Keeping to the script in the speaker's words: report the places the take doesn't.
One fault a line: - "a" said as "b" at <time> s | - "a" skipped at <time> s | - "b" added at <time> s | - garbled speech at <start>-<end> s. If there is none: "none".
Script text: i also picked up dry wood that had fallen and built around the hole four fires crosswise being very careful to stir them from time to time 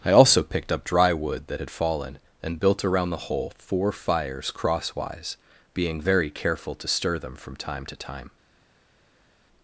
none